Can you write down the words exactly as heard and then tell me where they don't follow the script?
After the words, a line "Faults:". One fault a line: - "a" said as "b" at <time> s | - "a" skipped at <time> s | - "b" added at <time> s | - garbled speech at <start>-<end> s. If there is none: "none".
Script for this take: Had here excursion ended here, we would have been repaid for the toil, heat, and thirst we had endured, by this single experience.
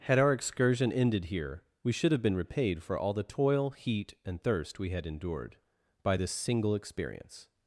Had our excursion ended here, we should have been repaid for all the toil, heat, and thirst we had endured, by this single experience.
Faults:
- "here" said as "our" at 0.2 s
- "would" said as "should" at 1.9 s
- "all" added at 3.0 s